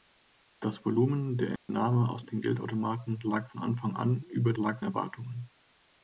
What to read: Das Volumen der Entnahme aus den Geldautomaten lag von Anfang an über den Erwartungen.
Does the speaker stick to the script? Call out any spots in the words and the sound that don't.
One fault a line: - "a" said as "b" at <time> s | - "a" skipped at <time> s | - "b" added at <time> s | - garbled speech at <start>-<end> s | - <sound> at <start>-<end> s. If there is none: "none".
- dropout at 1.6-1.7 s
- "den" said as "lag" at 4.5 s